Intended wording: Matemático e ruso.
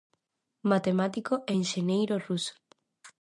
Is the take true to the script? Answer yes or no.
no